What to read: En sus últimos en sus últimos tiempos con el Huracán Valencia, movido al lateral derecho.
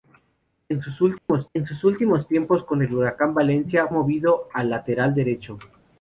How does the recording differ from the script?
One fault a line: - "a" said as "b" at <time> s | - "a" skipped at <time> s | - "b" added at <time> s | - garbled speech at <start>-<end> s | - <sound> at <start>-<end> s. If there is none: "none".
- dropout at 1.2-1.3 s